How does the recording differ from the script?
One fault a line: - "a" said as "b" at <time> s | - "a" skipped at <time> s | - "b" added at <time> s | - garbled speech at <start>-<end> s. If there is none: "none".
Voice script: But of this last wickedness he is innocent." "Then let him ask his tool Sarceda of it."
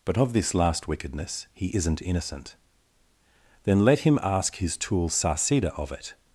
- "is" said as "isn't" at 1.7 s